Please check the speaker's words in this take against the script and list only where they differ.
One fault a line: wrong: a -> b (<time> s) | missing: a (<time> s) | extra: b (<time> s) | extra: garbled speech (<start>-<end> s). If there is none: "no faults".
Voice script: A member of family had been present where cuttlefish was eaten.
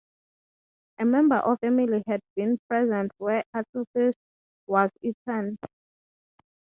no faults